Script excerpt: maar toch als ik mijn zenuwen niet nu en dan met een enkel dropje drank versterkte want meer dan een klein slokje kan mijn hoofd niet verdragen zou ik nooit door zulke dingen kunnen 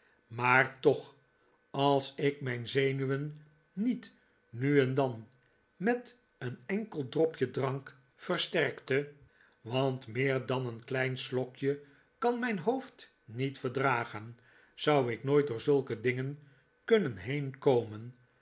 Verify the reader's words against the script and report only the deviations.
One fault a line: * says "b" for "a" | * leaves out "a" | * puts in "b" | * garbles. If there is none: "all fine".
all fine